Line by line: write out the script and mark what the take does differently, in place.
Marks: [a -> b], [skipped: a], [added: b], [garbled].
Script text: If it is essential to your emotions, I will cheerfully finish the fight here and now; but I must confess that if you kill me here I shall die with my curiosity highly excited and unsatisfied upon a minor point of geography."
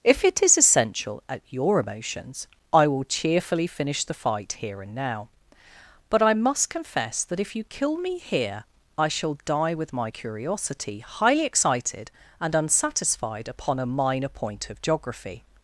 If it is essential [to -> at] your emotions, I will cheerfully finish the fight here and now; but I must confess that if you kill me here I shall die with my curiosity highly excited and unsatisfied upon a minor point of geography."